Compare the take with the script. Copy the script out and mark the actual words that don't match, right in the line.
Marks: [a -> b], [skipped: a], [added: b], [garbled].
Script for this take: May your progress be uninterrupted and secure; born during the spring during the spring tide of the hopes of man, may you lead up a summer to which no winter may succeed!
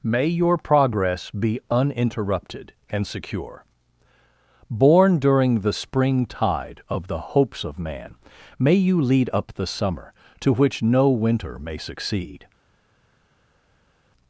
May your progress be uninterrupted and secure; born during the spring [skipped: during the spring] tide of the hopes of man, may you lead up [a -> the] summer to which no winter may succeed!